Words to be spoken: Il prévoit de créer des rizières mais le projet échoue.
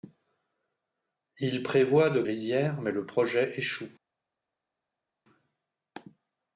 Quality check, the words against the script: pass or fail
fail